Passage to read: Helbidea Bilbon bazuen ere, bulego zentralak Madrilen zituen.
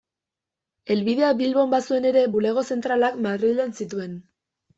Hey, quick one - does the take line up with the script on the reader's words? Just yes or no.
yes